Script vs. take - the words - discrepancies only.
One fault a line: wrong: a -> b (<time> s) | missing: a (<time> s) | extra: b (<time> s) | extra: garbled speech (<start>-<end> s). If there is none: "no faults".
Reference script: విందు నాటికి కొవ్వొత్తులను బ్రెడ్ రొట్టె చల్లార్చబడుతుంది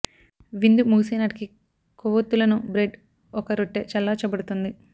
extra: ముగిసే (0.9 s)
extra: ఒక (3.3 s)